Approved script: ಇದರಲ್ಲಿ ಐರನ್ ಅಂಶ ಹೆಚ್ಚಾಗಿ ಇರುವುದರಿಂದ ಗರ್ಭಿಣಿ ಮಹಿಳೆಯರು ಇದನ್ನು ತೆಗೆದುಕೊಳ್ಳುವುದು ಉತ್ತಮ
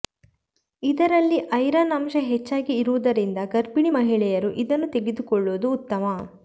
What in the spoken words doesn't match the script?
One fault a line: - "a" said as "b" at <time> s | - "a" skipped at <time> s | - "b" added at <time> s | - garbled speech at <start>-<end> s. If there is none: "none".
none